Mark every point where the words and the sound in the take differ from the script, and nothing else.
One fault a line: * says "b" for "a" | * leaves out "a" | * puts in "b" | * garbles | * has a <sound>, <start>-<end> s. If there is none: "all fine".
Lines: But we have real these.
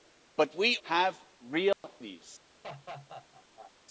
* has a dropout, 1.7-1.8 s
* has a laugh, 2.6-3.7 s